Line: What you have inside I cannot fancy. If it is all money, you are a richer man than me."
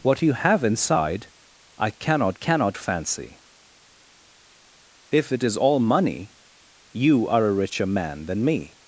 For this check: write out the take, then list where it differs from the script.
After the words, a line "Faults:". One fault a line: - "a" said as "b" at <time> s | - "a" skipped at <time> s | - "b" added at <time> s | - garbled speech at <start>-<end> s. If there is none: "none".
What you have inside I cannot cannot fancy. If it is all money, you are a richer man than me."
Faults:
- "cannot" added at 2.3 s